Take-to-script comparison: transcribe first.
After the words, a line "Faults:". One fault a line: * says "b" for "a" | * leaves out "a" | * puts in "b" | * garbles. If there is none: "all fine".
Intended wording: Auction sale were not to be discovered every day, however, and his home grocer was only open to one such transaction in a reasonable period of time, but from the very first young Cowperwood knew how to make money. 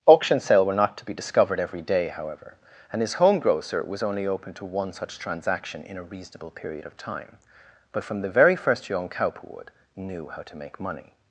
Auction sale were not to be discovered every day, however, and his home grocer was only open to one such transaction in a reasonable period of time, but from the very first young Cowperwood knew how to make money.
Faults:
all fine